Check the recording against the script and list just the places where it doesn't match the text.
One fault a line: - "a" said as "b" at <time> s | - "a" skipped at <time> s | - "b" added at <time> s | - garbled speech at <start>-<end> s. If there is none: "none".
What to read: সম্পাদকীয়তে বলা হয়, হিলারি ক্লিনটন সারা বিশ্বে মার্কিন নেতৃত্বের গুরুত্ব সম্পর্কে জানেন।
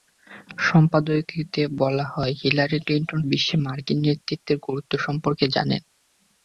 - "সারা" skipped at 3.2 s